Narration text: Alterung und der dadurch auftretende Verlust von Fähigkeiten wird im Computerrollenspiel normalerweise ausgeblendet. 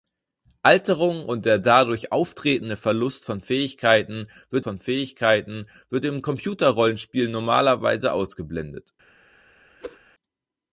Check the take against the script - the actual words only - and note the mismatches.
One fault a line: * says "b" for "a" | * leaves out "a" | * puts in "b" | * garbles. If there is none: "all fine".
* puts in "von Fähigkeiten wird"